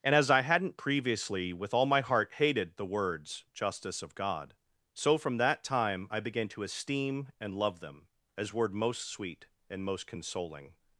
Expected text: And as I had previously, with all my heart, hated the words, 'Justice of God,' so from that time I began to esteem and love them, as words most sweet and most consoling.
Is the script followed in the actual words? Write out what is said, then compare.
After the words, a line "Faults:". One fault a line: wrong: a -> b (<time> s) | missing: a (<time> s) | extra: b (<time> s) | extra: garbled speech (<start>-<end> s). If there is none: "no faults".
And as I hadn't previously, with all my heart, hated the words, 'Justice of God,' so from that time I began to esteem and love them, as word most sweet and most consoling.
Faults:
wrong: had -> hadn't (0.4 s)
wrong: words -> word (8.5 s)